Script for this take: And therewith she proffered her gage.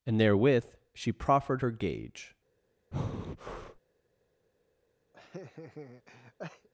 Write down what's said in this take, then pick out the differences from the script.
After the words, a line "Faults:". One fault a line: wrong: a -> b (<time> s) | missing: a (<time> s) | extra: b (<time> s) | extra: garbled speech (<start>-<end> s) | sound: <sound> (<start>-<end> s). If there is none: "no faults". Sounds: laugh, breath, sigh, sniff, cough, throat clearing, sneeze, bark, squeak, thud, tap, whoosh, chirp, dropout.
And therewith she proffered her gage.
Faults:
sound: breath (2.9-3.8 s)
sound: laugh (5.1-6.7 s)